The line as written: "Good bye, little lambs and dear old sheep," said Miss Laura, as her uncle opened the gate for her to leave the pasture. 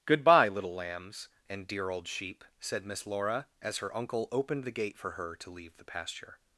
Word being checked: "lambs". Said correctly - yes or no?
yes